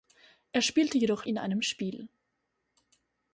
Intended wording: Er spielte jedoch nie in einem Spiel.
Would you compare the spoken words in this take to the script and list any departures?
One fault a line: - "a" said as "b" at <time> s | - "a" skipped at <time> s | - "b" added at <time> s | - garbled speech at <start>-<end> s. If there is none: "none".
- "nie" skipped at 1.3 s